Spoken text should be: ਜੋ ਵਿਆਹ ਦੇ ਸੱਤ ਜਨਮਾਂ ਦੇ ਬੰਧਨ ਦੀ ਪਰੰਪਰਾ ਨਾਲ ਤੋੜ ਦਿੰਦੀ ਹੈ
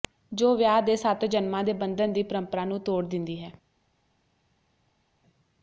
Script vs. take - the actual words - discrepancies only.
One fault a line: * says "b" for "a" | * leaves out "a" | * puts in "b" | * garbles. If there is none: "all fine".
* says "ਨੂੰ" for "ਨਾਲ"